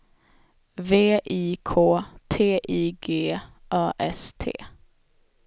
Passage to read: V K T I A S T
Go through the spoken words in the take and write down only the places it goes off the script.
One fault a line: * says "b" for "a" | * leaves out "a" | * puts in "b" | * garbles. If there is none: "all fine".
* puts in "I"
* puts in "G"